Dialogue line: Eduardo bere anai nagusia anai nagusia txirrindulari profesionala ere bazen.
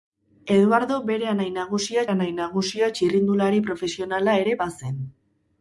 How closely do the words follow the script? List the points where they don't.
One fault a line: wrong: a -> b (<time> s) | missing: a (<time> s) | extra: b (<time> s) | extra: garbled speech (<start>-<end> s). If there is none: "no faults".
no faults